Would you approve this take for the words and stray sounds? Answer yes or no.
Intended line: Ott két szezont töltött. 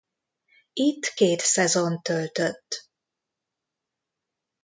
no